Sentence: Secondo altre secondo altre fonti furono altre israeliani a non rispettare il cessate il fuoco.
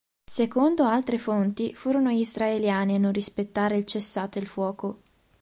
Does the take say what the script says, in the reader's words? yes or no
no